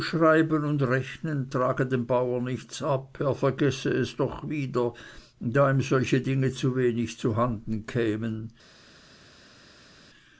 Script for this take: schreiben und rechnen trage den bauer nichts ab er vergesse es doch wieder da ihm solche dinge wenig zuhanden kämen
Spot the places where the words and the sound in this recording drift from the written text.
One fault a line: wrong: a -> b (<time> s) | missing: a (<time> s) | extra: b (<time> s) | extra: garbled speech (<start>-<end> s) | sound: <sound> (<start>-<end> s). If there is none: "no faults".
wrong: den -> dem (1.9 s)
extra: zu (6.5 s)